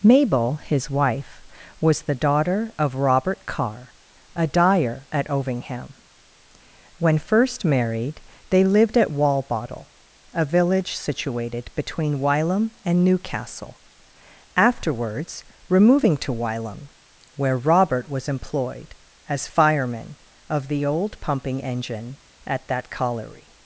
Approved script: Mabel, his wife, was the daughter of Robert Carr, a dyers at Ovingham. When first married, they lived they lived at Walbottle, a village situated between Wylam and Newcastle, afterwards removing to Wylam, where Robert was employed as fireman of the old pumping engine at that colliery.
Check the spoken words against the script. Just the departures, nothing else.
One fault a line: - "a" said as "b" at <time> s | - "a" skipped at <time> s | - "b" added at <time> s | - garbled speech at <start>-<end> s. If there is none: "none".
- "dyers" said as "dyer" at 4.5 s
- "they lived" skipped at 9.0 s